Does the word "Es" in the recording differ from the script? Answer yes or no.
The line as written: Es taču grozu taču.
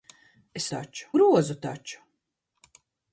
no